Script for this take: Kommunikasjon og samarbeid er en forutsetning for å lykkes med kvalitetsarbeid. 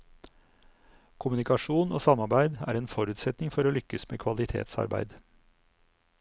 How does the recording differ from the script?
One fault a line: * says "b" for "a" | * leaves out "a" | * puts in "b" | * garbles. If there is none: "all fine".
all fine